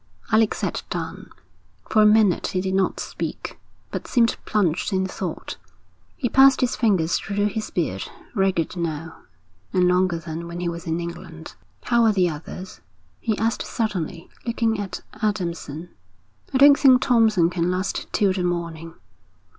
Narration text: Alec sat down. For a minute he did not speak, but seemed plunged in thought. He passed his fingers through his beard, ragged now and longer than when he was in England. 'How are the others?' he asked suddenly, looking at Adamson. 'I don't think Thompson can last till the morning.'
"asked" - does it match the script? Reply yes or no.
yes